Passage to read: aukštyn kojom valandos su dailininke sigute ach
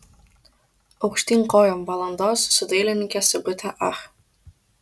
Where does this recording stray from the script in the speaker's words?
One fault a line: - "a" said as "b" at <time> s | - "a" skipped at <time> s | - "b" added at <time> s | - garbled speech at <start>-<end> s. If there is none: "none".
none